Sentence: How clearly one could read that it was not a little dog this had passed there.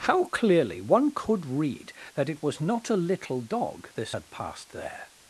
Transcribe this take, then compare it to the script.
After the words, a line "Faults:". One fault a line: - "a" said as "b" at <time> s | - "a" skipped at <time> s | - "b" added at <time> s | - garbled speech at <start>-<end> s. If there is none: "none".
How clearly one could read that it was not a little dog this had passed there.
Faults:
none